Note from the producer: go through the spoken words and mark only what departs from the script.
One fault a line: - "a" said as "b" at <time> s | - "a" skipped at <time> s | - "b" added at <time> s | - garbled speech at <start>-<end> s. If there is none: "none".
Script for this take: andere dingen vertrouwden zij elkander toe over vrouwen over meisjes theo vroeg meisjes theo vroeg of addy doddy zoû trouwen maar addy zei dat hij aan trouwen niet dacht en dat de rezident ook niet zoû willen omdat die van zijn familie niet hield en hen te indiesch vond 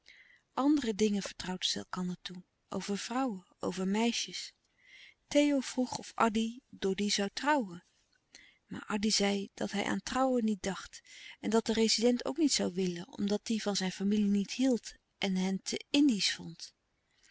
- "meisjes theo vroeg" skipped at 6.0 s